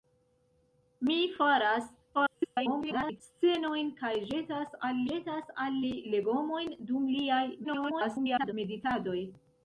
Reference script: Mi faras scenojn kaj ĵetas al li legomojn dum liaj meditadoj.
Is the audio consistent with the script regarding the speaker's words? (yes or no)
no